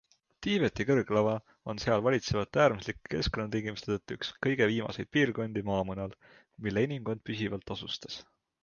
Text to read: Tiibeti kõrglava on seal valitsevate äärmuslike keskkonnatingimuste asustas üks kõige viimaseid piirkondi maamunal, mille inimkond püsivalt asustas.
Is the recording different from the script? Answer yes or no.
yes